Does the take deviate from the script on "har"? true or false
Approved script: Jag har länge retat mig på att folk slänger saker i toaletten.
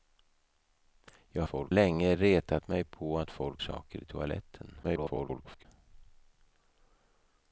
true